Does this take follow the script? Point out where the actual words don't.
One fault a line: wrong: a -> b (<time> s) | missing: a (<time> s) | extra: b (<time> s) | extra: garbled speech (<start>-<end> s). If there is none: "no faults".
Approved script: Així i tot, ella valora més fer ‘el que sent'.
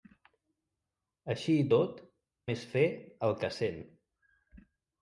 missing: ella valora (2.0 s)